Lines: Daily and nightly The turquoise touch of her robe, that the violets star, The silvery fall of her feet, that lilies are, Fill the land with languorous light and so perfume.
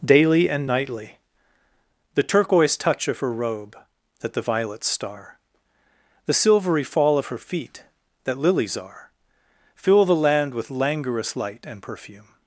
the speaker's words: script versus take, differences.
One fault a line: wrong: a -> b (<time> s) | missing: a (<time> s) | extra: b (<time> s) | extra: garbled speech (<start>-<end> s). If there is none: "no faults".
missing: so (11.8 s)